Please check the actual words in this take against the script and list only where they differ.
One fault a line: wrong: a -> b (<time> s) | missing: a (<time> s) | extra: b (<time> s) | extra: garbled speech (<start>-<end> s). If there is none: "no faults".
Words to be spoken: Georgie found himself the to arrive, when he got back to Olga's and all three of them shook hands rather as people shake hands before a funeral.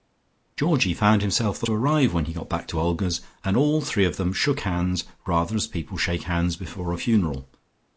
no faults